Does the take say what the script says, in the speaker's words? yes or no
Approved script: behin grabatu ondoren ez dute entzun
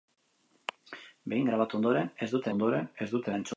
no